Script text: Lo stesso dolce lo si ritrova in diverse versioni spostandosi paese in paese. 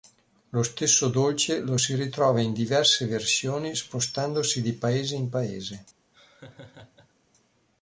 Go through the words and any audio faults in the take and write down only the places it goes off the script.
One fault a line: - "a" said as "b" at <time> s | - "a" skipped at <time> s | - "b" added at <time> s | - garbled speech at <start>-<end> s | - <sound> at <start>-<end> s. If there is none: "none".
- "di" added at 4.6 s
- laugh at 6.1-7.1 s